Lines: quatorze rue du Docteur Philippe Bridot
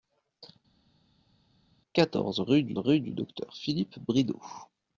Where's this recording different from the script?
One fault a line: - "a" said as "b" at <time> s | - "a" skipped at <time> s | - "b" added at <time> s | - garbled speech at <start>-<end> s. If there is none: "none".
- "rue du" added at 2.8 s